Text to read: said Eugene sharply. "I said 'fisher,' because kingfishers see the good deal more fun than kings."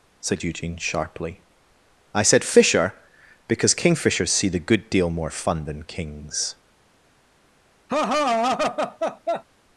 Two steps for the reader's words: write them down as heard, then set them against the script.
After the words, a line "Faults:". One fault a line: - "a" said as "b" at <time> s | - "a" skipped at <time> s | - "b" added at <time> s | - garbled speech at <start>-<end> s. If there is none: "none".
said Eugene sharply. "I said 'fisher,' because kingfishers see the good deal more fun than kings."
Faults:
none